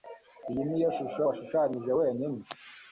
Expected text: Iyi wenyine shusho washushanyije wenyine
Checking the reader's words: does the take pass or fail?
fail